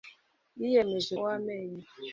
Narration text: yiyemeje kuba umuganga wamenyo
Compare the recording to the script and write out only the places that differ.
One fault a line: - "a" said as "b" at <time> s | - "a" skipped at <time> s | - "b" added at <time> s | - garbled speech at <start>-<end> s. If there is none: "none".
- "kuba umuganga" skipped at 1.1 s